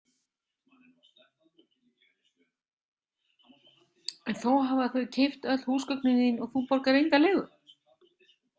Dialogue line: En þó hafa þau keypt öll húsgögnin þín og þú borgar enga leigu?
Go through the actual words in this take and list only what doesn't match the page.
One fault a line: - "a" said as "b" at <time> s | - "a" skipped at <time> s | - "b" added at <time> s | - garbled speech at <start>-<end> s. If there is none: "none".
none